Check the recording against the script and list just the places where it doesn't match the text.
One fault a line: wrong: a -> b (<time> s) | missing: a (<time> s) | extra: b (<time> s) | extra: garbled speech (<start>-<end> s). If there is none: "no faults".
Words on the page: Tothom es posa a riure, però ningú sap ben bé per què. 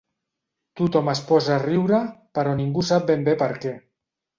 no faults